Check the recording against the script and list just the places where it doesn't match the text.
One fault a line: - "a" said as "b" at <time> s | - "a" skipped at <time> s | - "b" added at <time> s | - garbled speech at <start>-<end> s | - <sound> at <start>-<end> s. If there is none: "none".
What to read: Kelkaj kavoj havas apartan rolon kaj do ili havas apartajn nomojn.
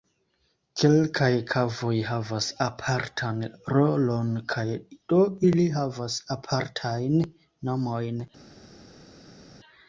none